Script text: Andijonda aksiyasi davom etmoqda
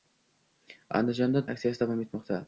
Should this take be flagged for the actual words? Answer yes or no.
no